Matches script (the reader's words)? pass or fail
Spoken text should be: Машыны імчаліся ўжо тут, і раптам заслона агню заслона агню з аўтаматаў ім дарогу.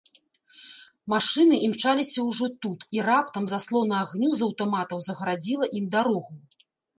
fail